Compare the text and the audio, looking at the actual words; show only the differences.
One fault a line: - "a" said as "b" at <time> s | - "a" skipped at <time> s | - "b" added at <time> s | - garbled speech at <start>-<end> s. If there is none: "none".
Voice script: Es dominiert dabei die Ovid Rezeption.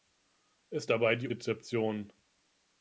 - "dominiert" skipped at 0.9 s
- "Ovid" skipped at 1.3 s